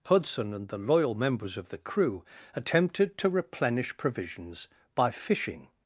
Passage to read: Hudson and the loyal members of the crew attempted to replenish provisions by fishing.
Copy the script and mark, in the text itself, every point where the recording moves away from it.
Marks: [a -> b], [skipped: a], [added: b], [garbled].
Hudson and the loyal members of the crew attempted to replenish provisions by fishing.